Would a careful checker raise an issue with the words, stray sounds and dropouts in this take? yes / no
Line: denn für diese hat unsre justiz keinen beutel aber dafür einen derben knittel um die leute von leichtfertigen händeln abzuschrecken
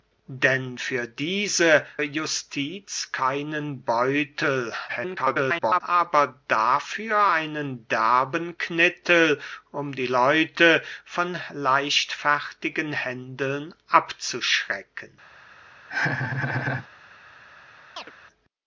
yes